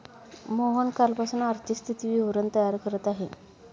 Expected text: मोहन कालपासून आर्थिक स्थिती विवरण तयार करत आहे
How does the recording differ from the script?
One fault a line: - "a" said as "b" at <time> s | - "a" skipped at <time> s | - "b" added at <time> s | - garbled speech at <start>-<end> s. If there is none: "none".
none